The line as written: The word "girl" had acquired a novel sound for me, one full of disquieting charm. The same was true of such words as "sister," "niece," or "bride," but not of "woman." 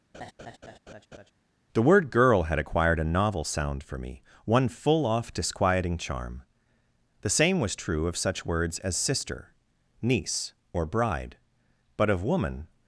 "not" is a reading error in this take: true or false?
true